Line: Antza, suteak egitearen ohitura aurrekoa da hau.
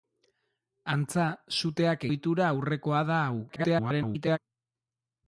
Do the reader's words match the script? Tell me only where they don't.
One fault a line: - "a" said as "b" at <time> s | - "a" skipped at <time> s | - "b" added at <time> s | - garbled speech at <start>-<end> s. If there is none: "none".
- "egitearen" skipped at 2.1 s
- garbled speech at 3.5-4.4 s